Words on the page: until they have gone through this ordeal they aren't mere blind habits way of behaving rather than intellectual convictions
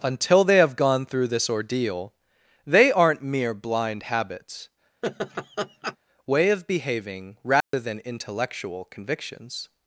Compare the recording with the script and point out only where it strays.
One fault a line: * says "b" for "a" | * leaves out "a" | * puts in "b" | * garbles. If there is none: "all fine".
all fine